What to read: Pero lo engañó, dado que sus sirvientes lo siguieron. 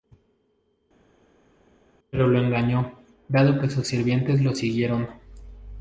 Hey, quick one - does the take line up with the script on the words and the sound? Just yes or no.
yes